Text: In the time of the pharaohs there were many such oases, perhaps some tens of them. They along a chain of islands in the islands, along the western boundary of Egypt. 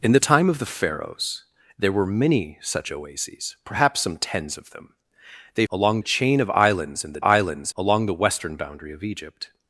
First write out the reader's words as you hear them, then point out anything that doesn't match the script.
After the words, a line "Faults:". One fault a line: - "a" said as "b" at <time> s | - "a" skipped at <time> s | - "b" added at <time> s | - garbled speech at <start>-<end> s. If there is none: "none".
In the time of the pharaohs there were many such oases, perhaps some tens of them. They along a chain of islands in the islands, along the western boundary of Egypt.
Faults:
none